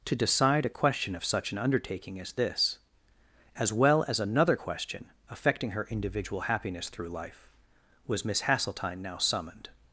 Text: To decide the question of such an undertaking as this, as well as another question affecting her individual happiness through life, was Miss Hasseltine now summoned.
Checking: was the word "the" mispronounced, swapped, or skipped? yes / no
yes